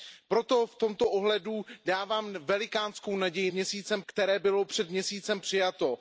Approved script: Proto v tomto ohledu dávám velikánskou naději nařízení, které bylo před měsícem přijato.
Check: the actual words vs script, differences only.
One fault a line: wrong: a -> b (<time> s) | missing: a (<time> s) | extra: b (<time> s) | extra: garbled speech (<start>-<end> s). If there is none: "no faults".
wrong: nařízení -> měsícem (3.5 s)